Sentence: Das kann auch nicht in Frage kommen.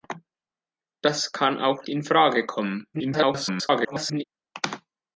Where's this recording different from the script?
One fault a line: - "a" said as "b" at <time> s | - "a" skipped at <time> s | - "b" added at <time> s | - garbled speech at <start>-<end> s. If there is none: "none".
- "nicht" skipped at 1.9 s
- garbled speech at 2.9-4.2 s